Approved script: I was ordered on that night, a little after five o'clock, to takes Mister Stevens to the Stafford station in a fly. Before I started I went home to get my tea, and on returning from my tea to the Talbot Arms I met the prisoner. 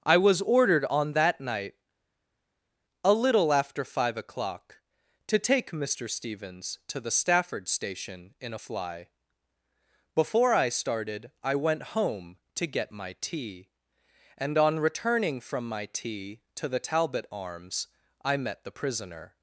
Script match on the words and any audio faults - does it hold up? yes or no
no